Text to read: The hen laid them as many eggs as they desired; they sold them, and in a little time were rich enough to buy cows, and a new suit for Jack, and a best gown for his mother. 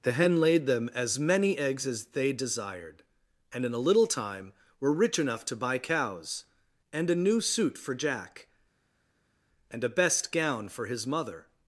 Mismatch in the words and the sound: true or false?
true